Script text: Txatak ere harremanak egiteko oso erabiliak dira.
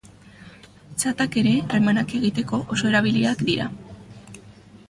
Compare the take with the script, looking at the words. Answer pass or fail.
pass